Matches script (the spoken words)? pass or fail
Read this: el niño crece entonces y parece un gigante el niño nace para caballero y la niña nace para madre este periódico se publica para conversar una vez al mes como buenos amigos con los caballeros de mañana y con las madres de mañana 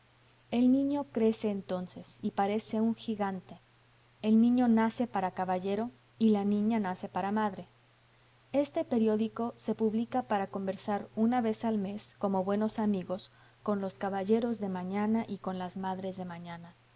pass